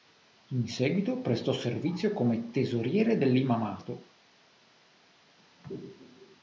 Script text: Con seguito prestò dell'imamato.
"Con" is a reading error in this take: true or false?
true